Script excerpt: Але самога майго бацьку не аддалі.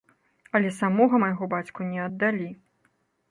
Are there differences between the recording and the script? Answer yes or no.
no